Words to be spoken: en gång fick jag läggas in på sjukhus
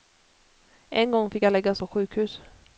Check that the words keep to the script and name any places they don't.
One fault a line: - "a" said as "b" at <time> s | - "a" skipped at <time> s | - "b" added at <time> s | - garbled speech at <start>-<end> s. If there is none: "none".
- "in" skipped at 1.8 s